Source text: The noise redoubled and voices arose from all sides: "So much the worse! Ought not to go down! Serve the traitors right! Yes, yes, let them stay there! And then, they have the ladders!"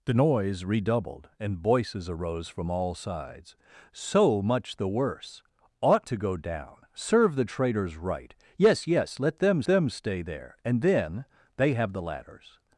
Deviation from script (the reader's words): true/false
true